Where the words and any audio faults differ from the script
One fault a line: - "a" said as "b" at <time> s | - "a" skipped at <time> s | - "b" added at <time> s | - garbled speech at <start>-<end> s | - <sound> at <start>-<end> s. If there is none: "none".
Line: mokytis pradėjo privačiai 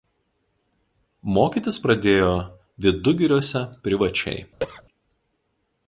- "vidugiriuose" added at 2.9 s
- cough at 4.6-4.8 s